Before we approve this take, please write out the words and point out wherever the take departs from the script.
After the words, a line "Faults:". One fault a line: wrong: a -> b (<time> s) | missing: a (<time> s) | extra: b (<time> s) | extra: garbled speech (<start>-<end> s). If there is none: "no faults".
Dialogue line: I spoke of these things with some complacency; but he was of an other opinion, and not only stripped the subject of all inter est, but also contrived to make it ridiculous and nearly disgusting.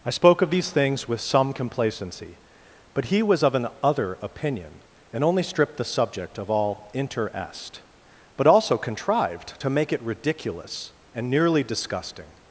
I spoke of these things with some complacency; but he was of an other opinion, and only stripped the subject of all inter est, but also contrived to make it ridiculous and nearly disgusting.
Faults:
missing: not (5.2 s)